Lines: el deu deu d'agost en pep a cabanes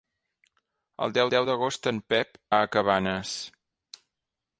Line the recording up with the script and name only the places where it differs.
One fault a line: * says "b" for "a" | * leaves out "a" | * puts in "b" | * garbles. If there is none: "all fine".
all fine